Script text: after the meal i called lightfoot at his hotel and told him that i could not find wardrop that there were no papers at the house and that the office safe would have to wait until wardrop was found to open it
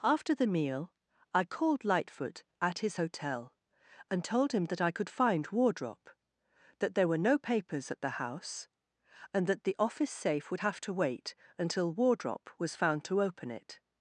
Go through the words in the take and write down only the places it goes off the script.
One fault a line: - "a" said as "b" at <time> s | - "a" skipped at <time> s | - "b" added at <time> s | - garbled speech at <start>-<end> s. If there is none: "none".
- "not" skipped at 5.1 s